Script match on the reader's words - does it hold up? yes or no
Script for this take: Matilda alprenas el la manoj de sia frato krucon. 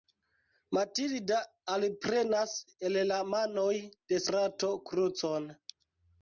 no